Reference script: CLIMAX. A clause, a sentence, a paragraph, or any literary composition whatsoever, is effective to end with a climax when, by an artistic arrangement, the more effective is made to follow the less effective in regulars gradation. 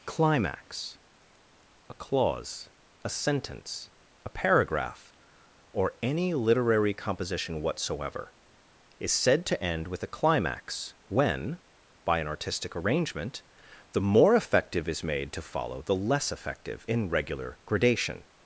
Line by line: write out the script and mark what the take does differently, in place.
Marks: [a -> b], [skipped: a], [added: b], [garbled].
CLIMAX. A clause, a sentence, a paragraph, or any literary composition whatsoever, is [effective -> said] to end with a climax when, by an artistic arrangement, the more effective is made to follow the less effective in [regulars -> regular] gradation.